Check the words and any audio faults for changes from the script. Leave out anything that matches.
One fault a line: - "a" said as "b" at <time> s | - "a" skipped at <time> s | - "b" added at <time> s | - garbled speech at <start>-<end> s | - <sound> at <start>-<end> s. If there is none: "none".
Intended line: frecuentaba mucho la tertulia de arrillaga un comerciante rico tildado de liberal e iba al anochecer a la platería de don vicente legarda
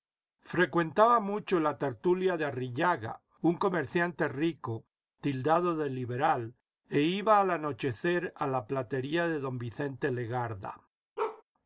- bark at 11.2-11.4 s